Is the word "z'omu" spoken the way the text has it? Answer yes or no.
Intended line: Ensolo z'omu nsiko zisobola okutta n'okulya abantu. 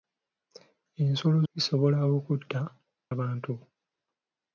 no